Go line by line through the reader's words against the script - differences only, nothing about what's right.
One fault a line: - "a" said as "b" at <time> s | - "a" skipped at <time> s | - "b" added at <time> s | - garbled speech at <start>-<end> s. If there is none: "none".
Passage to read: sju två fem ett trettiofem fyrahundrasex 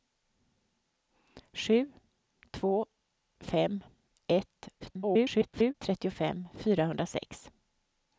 - garbled speech at 4.8-5.7 s